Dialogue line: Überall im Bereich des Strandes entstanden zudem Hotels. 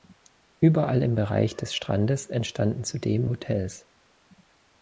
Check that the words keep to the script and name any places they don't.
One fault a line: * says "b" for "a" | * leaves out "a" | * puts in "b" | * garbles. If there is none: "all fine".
all fine